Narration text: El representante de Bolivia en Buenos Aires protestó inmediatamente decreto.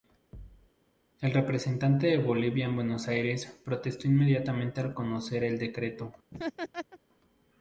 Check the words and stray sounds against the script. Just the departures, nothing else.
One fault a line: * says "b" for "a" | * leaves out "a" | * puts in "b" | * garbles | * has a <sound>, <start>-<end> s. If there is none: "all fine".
* has a thud, 0.3-0.7 s
* puts in "al conocer el"
* has a laugh, 6.3-7.0 s